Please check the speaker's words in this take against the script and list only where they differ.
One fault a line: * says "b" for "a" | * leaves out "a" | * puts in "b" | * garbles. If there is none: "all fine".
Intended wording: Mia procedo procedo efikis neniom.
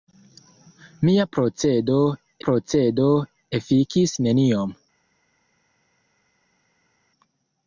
all fine